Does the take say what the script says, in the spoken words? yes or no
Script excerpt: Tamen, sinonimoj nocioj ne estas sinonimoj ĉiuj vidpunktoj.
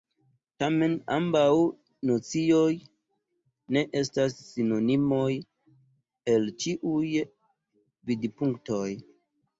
no